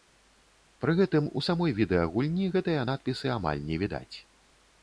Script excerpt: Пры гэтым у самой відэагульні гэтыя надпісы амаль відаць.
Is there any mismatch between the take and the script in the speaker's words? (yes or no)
yes